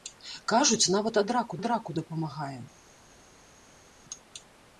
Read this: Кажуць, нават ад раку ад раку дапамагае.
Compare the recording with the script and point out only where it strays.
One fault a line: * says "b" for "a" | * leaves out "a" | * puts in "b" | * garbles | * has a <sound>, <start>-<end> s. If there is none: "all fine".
all fine